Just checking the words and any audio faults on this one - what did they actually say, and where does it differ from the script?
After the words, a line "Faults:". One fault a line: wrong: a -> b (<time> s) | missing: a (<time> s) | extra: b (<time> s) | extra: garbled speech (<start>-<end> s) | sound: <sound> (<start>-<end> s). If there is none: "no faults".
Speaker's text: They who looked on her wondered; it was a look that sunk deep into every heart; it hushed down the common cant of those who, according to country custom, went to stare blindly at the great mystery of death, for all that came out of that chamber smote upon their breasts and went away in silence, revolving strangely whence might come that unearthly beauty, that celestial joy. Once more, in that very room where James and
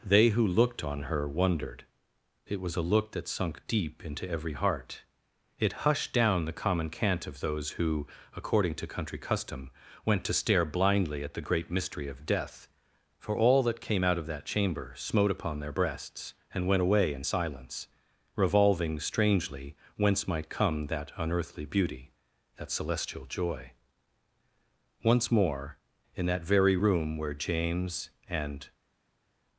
They who looked on her wondered; it was a look that sunk deep into every heart; it hushed down the common cant of those who, according to country custom, went to stare blindly at the great mystery of death, for all that came out of that chamber smote upon their breasts and went away in silence, revolving strangely whence might come that unearthly beauty, that celestial joy. Once more, in that very room where James and
Faults:
no faults